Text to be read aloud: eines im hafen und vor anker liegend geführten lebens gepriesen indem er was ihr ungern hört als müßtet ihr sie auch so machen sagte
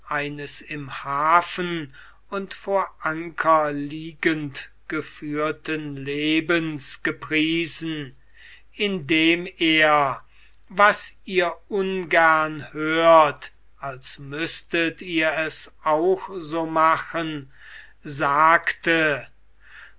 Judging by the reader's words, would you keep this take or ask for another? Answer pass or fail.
fail